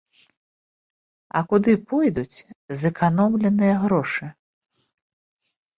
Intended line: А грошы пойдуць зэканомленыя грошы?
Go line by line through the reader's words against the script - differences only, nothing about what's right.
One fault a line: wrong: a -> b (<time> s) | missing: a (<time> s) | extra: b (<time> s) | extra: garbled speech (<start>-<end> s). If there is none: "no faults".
wrong: грошы -> куды (1.5 s)